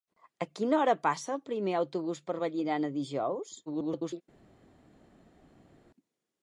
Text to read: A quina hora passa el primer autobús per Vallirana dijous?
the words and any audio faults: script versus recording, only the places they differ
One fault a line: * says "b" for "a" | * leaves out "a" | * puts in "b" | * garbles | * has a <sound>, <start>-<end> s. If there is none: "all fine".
* garbles